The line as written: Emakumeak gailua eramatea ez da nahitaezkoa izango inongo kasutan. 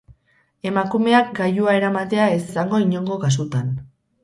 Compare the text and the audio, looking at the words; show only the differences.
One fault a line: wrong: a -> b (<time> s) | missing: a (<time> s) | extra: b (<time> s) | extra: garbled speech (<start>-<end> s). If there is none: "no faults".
missing: da nahitaezkoa (2.4 s)